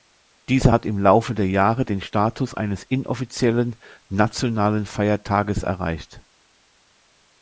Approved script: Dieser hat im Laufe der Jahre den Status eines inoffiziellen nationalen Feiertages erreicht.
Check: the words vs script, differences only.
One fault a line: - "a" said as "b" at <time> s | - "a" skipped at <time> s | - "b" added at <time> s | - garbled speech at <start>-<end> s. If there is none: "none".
none